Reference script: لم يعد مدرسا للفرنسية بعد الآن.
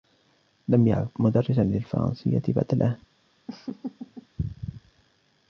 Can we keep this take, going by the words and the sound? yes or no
no